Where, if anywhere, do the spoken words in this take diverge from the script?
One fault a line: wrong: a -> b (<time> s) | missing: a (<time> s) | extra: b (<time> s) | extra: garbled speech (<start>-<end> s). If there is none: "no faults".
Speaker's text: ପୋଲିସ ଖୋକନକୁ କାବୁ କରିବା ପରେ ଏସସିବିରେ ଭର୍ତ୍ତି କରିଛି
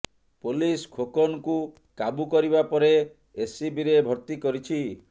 no faults